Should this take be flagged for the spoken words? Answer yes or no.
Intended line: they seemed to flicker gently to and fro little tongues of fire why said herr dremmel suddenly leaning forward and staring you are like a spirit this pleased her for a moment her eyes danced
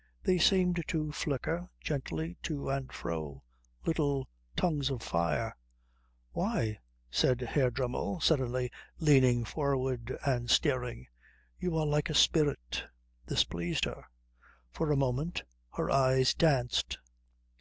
no